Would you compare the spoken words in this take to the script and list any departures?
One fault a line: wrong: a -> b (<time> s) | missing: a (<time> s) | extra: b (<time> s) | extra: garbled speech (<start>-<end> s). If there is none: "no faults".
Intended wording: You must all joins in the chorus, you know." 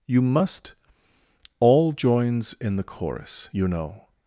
no faults